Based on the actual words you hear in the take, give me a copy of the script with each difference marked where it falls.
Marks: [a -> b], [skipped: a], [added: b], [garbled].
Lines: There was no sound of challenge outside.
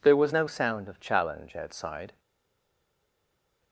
There was no sound of challenge outside.